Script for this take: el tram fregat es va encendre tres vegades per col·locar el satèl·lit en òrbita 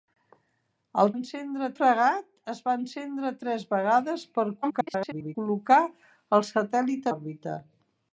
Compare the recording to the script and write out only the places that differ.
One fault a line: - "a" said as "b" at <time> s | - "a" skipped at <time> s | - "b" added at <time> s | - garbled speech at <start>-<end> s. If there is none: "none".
- "tram" said as "encendre" at 1.2 s
- garbled speech at 4.6-5.4 s
- "en" skipped at 7.1 s